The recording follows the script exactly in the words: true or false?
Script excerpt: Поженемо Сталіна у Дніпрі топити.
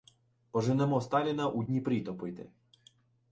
true